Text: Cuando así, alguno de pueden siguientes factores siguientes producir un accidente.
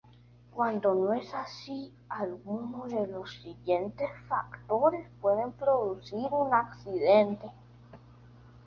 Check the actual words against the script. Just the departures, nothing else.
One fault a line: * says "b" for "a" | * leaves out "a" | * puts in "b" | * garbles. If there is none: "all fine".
* puts in "no es"
* says "los" for "pueden"
* says "pueden" for "siguientes"